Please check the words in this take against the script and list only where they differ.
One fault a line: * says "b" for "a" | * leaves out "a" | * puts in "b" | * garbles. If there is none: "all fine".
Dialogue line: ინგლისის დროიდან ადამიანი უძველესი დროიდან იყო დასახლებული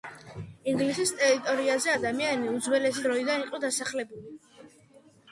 * says "ტერიტორიაზე" for "დროიდან"